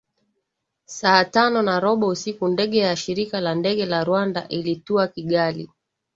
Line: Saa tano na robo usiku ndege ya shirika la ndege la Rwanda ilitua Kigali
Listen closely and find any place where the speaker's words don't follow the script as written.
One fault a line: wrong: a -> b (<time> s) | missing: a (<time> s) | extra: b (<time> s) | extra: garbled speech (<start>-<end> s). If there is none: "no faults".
no faults